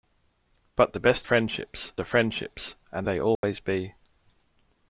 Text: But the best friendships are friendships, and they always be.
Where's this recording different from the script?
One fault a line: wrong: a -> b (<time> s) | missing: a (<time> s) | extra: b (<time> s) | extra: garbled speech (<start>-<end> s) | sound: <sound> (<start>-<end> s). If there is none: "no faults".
sound: dropout (3.4-3.4 s)